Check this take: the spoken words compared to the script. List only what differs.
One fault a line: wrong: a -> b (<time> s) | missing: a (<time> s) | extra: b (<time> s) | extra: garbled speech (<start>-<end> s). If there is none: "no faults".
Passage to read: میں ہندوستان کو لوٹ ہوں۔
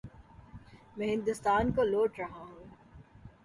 extra: رہا (2.2 s)